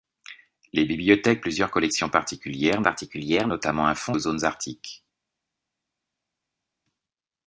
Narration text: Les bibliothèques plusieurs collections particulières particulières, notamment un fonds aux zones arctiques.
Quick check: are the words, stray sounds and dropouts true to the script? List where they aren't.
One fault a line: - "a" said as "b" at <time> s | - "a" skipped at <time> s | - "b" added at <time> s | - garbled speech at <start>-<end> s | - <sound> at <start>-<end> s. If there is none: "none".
none